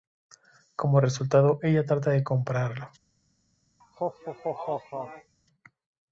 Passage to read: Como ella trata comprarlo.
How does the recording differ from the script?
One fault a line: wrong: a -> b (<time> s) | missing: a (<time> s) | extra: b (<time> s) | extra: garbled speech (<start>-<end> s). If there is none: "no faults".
extra: resultado (1.0 s)
extra: de (2.1 s)